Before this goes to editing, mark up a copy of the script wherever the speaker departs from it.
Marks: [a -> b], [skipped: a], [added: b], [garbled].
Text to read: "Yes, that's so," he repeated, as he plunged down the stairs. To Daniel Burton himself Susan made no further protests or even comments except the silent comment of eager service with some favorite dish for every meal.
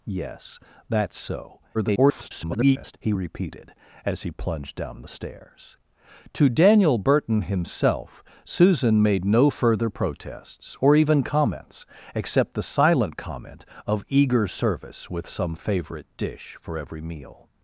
"Yes, that's so," [garbled] he repeated, as he plunged down the stairs. To Daniel Burton himself Susan made no further protests or even comments except the silent comment of eager service with some favorite dish for every meal.